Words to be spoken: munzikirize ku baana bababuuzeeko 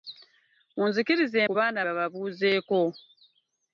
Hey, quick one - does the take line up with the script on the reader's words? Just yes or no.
yes